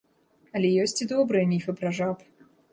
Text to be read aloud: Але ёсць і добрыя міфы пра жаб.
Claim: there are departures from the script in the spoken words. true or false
false